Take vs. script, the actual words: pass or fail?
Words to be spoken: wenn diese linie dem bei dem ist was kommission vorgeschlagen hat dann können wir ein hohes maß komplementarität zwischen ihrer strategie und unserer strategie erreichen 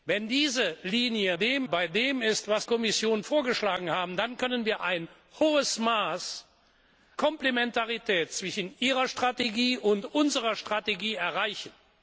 pass